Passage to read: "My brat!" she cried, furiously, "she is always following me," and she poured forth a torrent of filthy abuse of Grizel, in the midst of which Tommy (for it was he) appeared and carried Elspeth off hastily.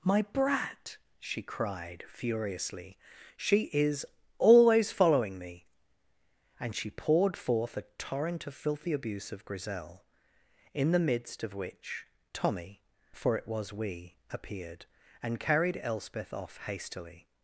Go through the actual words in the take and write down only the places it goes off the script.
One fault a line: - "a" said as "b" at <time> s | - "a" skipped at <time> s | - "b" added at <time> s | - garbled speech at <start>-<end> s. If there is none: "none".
- "he" said as "we" at 13.7 s